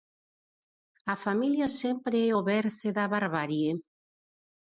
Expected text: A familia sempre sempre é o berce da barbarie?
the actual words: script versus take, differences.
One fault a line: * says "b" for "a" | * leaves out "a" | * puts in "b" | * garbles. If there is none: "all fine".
* leaves out "sempre"